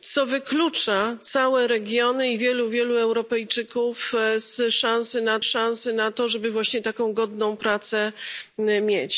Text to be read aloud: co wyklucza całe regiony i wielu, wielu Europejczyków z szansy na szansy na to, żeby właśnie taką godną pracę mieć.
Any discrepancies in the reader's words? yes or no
no